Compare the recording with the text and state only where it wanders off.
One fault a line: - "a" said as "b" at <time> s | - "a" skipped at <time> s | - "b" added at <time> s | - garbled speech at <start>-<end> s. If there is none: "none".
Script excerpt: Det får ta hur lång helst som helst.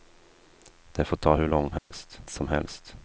none